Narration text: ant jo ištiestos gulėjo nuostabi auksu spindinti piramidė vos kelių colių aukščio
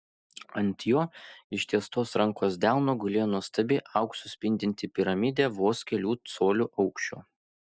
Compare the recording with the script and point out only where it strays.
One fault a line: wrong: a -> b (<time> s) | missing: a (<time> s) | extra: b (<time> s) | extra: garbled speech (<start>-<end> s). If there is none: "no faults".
extra: rankos delno (2.2 s)